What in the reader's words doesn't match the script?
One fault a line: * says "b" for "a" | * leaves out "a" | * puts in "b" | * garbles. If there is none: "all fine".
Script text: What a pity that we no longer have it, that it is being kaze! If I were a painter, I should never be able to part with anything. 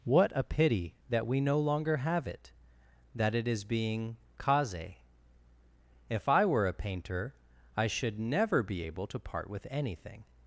all fine